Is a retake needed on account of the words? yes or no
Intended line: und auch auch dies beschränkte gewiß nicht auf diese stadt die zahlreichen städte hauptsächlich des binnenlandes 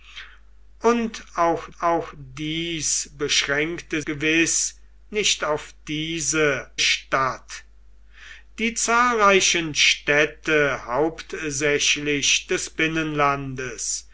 no